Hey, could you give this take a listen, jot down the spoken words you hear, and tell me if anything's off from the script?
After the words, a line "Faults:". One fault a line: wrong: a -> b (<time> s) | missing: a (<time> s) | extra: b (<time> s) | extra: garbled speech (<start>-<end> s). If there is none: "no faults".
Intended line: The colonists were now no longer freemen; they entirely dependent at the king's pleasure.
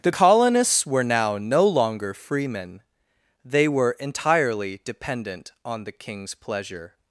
The colonists were now no longer freemen; they were entirely dependent on the king's pleasure.
Faults:
extra: were (3.7 s)
wrong: at -> on (5.6 s)